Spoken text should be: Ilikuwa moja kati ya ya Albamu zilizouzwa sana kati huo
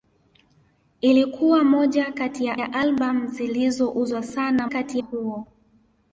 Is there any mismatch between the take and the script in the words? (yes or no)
no